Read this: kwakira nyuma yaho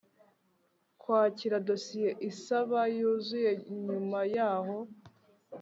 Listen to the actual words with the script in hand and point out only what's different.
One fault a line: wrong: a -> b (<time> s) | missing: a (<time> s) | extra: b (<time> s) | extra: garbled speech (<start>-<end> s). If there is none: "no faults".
extra: dosiye isaba yuzuye (1.7 s)